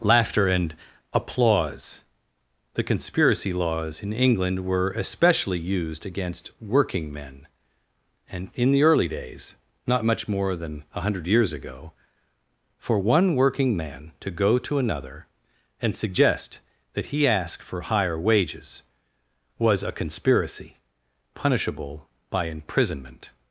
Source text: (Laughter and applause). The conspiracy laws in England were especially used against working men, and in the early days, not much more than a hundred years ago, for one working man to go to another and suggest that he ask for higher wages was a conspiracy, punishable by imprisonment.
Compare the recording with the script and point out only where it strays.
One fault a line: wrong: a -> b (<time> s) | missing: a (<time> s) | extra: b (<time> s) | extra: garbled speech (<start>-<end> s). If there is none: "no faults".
no faults